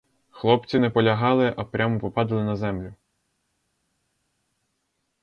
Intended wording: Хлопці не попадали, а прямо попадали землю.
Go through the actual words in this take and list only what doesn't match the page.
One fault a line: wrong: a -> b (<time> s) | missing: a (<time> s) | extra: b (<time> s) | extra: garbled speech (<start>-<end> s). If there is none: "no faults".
wrong: попадали -> полягали (0.9 s)
extra: на (2.4 s)